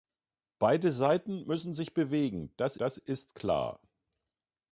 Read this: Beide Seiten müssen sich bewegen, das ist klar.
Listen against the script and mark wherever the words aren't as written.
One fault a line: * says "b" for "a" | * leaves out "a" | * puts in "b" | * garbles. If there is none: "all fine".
* puts in "das"